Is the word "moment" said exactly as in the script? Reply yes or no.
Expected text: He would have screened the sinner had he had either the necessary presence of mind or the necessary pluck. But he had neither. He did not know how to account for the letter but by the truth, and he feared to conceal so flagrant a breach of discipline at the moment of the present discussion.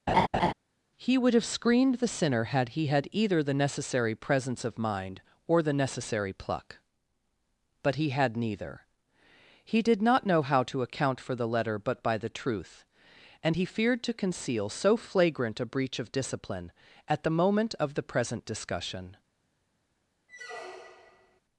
yes